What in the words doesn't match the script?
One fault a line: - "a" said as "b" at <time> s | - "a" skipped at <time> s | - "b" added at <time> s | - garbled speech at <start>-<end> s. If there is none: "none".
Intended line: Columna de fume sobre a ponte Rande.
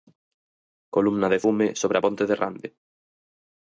- "de" added at 2.3 s